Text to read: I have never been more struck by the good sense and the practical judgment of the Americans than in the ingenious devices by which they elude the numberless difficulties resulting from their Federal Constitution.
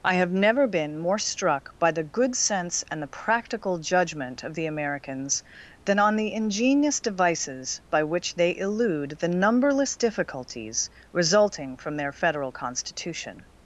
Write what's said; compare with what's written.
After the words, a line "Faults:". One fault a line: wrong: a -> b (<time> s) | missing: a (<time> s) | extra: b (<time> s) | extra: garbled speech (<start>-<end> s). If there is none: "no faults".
I have never been more struck by the good sense and the practical judgment of the Americans than on the ingenious devices by which they elude the numberless difficulties resulting from their Federal Constitution.
Faults:
wrong: in -> on (6.0 s)